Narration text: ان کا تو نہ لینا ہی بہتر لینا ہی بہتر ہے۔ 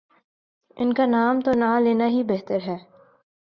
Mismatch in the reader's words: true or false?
true